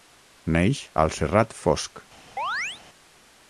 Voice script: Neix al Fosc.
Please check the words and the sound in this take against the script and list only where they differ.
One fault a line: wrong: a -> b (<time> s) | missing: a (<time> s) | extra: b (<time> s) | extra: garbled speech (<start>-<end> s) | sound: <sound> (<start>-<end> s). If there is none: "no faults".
extra: Serrat (1.2 s)
sound: chirp (2.4-2.8 s)